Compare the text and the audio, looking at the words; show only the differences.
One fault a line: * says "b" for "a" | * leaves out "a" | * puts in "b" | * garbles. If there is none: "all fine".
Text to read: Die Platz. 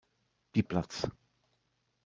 all fine